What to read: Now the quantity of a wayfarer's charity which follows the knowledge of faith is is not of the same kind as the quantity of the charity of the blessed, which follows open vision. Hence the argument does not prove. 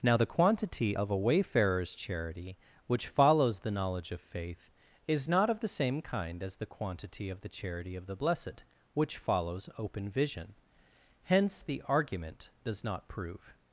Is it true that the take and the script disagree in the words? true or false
true